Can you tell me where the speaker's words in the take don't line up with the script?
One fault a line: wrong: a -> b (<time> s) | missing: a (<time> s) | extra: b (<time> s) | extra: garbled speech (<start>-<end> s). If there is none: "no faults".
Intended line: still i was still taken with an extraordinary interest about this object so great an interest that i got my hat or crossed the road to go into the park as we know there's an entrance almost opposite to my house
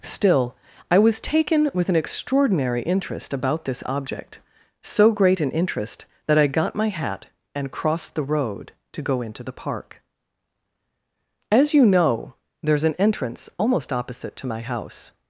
missing: still (1.2 s)
wrong: or -> and (7.5 s)
wrong: we -> you (11.7 s)